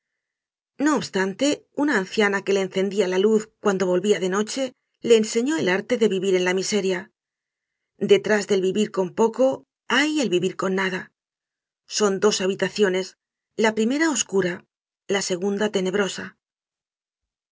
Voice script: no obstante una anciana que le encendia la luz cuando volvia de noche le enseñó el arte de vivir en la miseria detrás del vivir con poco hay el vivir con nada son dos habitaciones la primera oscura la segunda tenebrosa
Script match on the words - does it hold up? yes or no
yes